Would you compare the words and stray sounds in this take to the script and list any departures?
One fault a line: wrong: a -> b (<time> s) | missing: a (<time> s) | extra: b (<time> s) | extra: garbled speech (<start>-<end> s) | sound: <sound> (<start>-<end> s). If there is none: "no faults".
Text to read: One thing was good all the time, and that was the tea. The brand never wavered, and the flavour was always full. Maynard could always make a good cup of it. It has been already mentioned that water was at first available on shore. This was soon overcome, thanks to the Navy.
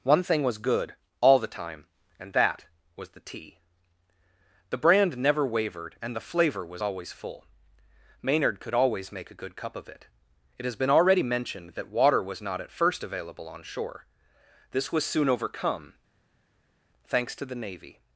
extra: not (12.4 s)